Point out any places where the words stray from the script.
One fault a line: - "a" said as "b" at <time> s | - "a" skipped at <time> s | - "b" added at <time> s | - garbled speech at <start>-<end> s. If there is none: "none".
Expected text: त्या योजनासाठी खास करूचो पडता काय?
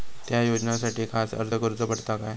- "अर्ज" added at 1.4 s